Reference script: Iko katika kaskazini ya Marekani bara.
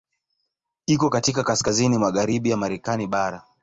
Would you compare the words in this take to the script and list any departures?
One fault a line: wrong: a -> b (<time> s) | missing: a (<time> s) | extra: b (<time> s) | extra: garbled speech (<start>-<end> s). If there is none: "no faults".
extra: magharibi (2.0 s)